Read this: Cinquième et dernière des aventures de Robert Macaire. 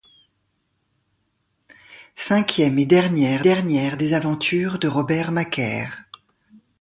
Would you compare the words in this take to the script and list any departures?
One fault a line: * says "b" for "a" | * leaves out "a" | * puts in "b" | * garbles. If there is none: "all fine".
* puts in "dernière"